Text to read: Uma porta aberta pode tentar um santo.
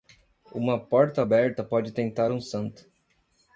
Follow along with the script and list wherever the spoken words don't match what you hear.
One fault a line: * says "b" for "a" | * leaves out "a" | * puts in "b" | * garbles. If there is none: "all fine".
all fine